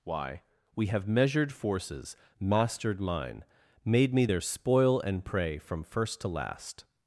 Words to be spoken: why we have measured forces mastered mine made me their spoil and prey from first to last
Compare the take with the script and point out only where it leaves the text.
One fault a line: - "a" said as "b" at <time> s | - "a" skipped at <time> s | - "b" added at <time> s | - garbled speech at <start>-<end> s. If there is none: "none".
none